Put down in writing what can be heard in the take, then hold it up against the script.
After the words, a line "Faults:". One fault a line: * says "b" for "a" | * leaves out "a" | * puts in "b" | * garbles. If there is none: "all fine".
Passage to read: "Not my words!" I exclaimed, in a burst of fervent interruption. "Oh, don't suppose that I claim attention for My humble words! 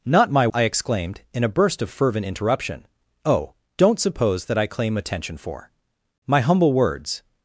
"Not my!" I exclaimed, in a burst of fervent interruption. "Oh, don't suppose that I claim attention for My humble words!
Faults:
* leaves out "words"